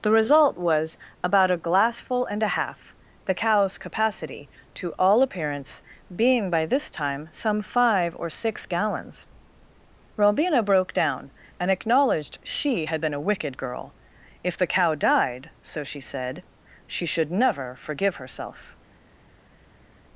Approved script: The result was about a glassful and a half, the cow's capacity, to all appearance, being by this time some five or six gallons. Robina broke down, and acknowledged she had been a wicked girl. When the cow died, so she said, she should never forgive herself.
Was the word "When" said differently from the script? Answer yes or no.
yes